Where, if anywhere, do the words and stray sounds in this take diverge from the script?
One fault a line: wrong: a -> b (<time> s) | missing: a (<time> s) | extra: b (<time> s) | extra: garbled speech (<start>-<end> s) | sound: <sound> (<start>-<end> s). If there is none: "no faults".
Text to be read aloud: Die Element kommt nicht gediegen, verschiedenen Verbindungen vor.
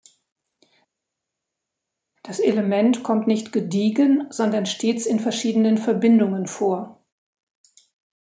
wrong: Die -> Das (2.2 s)
extra: sondern stets in (4.3 s)